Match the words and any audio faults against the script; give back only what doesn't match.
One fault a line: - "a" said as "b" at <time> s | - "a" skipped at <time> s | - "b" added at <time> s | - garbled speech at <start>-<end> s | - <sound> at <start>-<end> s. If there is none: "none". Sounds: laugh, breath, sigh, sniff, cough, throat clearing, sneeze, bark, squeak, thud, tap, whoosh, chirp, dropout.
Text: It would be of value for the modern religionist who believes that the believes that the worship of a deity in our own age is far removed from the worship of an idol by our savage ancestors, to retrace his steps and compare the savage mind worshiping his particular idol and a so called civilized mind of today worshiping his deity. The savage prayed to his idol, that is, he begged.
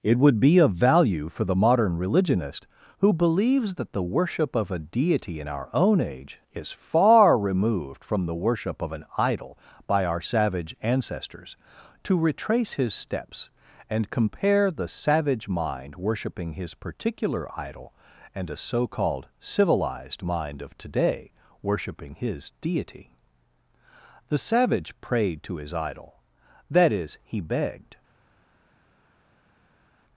- "believes that the" skipped at 4.0 s